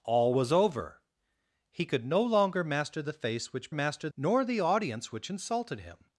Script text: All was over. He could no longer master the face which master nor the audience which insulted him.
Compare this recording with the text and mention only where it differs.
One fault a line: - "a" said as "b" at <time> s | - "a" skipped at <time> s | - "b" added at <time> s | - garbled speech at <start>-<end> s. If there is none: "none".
none